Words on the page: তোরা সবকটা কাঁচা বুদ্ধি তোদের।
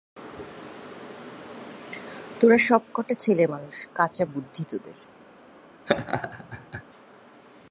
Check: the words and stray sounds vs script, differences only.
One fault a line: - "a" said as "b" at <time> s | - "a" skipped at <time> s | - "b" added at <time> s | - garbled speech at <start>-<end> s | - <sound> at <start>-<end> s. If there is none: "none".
- "ছেলেমানুষ" added at 3.2 s
- laugh at 5.9-6.8 s